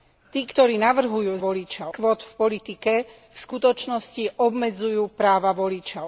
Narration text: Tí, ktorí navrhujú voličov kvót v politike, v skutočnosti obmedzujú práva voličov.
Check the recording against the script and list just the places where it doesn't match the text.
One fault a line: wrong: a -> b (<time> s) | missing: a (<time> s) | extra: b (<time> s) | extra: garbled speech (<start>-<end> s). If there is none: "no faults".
no faults